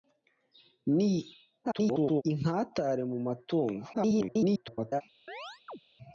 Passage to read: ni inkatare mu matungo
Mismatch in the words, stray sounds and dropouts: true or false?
true